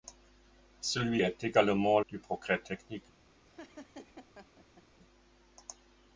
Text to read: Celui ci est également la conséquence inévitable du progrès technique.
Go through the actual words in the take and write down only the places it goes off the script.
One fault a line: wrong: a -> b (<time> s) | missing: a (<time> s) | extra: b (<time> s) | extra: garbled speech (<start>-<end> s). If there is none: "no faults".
missing: ci (1.2 s)
missing: la conséquence inévitable (2.0 s)